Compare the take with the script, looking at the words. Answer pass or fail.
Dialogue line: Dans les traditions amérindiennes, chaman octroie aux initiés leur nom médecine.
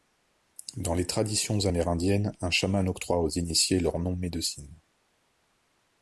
fail